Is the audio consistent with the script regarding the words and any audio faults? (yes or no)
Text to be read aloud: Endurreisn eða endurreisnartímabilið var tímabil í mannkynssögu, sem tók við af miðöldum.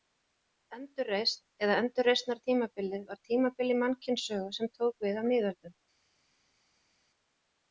yes